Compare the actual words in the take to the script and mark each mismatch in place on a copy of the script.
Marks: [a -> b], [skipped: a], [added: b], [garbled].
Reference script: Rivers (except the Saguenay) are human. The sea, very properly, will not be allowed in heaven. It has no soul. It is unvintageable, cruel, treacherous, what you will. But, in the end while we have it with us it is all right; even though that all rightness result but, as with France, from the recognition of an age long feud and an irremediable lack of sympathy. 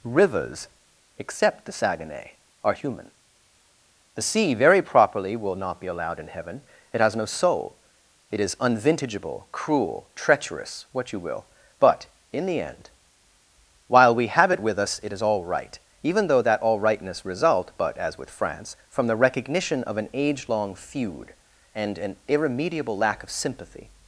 Rivers (except the Saguenay) are human. The sea, very properly, will not be allowed in heaven. It has no soul. It is unvintageable, cruel, treacherous, what you will. But, in the end while we have it with us it is all right; even though that all rightness result but, as with France, from the recognition of an age long feud and an irremediable lack of sympathy.